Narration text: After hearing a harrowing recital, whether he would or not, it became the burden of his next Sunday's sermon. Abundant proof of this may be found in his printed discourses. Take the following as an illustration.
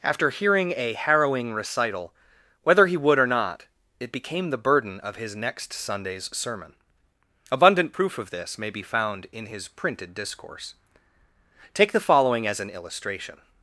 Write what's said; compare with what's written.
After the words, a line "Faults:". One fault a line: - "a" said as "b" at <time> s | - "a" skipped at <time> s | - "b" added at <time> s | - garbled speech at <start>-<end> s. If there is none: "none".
After hearing a harrowing recital, whether he would or not, it became the burden of his next Sunday's sermon. Abundant proof of this may be found in his printed discourse. Take the following as an illustration.
Faults:
- "discourses" said as "discourse" at 10.1 s